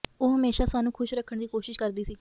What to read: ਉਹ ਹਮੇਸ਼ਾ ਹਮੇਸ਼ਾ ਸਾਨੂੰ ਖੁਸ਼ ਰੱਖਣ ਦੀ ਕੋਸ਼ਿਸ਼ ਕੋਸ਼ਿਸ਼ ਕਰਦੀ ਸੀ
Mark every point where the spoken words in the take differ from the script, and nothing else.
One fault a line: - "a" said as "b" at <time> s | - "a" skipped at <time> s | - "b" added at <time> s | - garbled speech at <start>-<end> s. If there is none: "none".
- "ਹਮੇਸ਼ਾ" skipped at 0.7 s
- "ਕੋਸ਼ਿਸ਼" skipped at 1.8 s